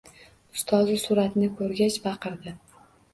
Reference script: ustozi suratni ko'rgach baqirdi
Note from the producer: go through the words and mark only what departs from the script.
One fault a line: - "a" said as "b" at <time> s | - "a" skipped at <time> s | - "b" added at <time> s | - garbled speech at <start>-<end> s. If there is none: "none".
none